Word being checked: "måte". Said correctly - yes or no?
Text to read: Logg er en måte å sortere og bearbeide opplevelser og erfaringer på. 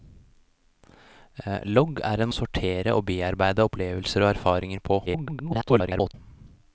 no